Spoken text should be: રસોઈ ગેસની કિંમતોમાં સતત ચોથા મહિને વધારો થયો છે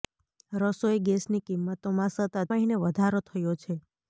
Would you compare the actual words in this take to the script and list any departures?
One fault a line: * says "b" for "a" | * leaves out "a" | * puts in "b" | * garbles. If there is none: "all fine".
* leaves out "ચોથા"